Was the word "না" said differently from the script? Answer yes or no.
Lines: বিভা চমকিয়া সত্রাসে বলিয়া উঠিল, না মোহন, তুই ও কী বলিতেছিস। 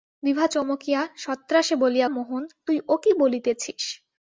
yes